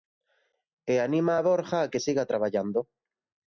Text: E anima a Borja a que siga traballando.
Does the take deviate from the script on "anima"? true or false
false